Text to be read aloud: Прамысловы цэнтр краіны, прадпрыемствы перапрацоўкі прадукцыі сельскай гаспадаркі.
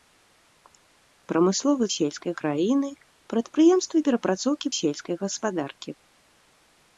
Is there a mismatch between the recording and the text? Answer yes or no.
yes